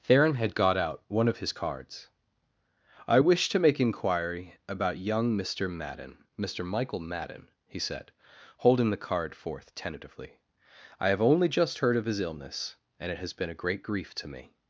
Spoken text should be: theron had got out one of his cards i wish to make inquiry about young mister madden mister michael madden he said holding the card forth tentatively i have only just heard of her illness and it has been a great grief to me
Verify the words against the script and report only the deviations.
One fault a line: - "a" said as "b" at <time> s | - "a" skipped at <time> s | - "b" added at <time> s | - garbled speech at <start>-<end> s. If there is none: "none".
- "her" said as "his" at 12.0 s